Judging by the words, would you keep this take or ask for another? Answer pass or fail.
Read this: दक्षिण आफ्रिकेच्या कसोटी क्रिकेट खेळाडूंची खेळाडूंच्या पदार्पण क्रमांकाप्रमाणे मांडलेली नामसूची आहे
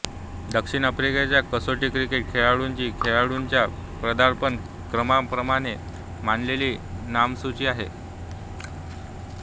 pass